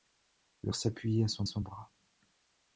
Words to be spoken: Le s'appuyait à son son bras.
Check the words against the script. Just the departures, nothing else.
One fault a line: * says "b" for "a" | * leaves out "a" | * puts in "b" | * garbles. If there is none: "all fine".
all fine